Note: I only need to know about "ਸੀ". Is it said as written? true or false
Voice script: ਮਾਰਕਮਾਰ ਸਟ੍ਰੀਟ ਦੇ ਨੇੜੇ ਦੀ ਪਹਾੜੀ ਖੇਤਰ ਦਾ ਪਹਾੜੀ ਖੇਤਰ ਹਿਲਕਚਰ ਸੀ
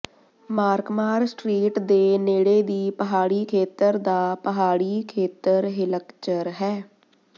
false